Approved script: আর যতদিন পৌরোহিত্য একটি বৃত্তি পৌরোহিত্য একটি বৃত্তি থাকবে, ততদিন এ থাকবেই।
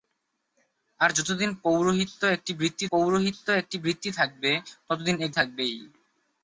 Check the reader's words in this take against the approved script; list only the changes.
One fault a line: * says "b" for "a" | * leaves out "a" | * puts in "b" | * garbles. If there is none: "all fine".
all fine